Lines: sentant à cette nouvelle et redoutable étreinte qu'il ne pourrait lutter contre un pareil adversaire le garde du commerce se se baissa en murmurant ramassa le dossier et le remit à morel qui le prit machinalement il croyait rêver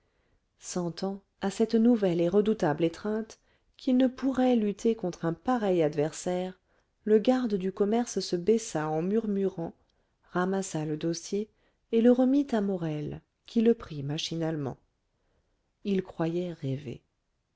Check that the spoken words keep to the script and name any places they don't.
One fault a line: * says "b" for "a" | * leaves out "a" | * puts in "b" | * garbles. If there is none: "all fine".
* leaves out "se"